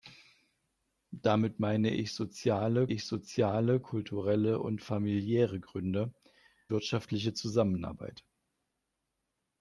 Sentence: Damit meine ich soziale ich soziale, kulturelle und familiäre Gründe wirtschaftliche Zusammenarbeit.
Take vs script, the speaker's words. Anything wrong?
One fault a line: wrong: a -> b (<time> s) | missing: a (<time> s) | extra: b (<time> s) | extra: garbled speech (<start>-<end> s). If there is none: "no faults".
no faults